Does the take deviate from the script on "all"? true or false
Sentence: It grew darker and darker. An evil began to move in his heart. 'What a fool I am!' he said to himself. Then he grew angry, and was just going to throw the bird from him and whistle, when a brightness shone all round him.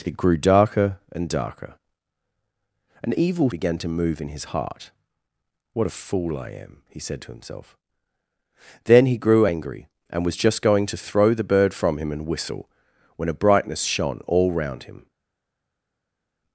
false